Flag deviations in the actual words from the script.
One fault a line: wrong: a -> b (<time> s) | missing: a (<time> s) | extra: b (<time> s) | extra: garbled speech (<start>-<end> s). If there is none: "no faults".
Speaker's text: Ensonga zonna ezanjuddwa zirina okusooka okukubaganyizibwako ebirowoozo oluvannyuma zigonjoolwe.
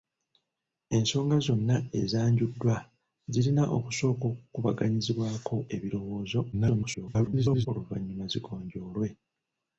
extra: garbled speech (6.5-7.7 s)